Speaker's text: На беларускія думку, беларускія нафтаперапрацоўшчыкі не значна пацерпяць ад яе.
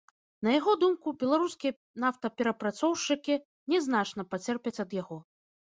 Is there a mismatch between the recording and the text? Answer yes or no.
yes